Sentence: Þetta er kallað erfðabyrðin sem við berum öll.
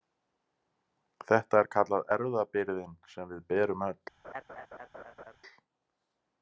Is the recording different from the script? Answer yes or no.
no